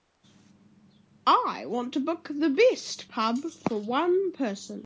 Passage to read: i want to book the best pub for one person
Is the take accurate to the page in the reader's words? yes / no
yes